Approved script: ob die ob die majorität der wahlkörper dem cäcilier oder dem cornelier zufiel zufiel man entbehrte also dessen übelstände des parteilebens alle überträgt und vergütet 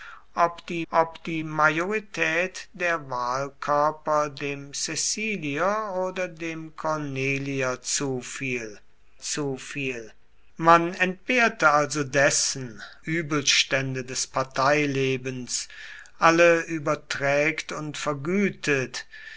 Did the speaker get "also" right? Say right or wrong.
right